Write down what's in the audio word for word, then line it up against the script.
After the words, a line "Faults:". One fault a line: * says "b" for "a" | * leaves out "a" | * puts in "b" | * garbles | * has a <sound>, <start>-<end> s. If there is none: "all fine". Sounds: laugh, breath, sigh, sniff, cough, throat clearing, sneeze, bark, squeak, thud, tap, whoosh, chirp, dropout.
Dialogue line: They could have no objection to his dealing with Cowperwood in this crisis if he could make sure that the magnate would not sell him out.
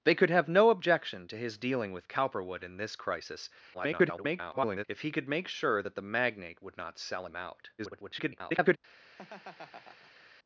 They could have no objection to his dealing with Cowperwood in this crisis [garbled] if he could make sure that the magnate would not sell him out. [garbled]
Faults:
* garbles
* garbles
* has a laugh, 9.1-10.3 s